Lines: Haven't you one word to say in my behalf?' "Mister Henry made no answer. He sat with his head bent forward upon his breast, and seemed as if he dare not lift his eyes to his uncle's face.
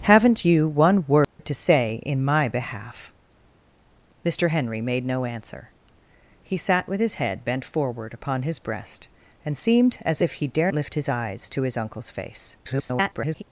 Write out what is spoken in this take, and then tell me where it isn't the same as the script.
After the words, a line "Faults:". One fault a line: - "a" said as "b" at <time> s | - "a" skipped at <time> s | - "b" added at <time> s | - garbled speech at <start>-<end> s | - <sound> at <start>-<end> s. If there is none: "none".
Haven't you one word to say in my behalf?' "Mister Henry made no answer. He sat with his head bent forward upon his breast, and seemed as if he dare lift his eyes to his uncle's face. [garbled]
Faults:
- dropout at 1.2-1.4 s
- "not" skipped at 10.7 s
- garbled speech at 12.6-13.4 s